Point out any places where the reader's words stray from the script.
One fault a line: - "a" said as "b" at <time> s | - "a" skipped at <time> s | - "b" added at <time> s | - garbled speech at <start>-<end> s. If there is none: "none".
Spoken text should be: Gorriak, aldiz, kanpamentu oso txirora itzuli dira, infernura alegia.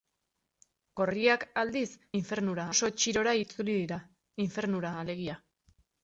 - "kanpamentu" said as "infernura" at 2.2 s